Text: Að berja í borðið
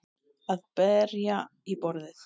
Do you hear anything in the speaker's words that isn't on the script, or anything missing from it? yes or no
no